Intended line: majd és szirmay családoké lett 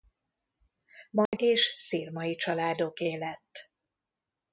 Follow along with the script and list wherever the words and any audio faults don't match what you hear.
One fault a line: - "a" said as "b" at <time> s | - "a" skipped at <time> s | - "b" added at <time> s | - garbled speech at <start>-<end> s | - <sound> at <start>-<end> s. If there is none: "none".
- dropout at 1.3-1.3 s